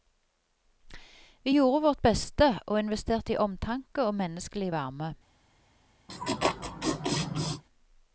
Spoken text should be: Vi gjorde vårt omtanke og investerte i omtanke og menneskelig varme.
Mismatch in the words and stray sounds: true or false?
true